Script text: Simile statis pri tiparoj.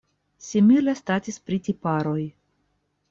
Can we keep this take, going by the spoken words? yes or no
yes